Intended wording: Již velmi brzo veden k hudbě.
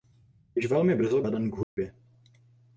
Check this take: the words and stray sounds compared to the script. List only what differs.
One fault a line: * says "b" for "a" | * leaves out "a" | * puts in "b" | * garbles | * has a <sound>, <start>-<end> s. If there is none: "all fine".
* has a dropout, 1.6-1.8 s